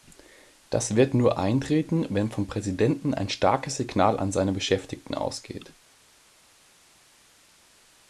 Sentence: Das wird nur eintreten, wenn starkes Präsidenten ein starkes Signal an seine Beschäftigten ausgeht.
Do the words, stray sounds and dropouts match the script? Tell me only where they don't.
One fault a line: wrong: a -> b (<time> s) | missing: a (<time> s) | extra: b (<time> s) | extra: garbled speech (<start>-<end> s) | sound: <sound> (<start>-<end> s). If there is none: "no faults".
wrong: starkes -> vom (2.3 s)